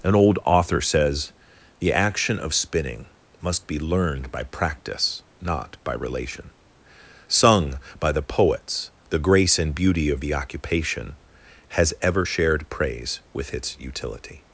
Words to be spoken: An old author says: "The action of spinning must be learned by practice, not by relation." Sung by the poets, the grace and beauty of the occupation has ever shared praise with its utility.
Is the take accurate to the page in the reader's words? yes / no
yes